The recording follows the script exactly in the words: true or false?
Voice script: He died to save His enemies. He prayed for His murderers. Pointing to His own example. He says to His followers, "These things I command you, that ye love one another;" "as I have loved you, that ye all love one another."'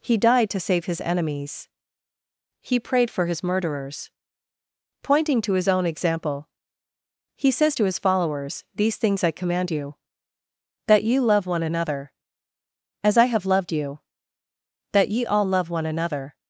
true